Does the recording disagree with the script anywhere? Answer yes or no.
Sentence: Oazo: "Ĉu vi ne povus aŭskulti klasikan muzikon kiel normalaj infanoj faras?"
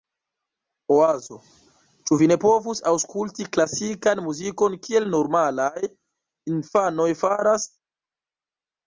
no